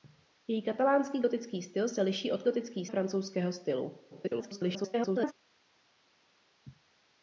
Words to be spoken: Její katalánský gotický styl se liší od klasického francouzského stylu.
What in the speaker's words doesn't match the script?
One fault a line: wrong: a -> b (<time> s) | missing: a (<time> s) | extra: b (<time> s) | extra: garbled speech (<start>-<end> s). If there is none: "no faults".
wrong: klasického -> gotický (2.4 s)
extra: garbled speech (4.1-5.3 s)